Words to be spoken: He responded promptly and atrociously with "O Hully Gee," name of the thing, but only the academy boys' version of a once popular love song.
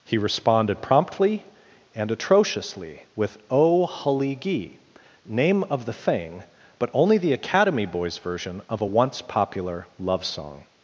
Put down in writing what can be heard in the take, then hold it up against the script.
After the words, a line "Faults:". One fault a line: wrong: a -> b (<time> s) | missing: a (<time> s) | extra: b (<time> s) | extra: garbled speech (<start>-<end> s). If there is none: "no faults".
He responded promptly and atrociously with "O Hully Gee," name of the thing, but only the academy boys' version of a once popular love song.
Faults:
no faults